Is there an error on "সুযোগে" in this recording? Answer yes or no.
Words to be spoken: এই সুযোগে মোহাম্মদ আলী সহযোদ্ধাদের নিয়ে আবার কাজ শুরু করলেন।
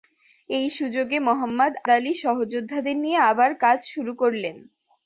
no